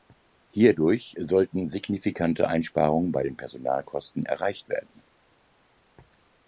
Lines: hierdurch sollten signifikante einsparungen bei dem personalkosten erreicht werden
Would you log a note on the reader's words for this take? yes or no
yes